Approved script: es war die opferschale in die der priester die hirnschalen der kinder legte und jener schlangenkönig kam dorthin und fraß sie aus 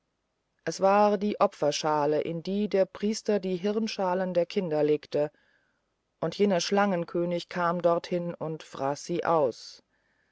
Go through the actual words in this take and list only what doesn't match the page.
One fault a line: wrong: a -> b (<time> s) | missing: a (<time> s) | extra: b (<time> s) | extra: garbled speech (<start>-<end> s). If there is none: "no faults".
no faults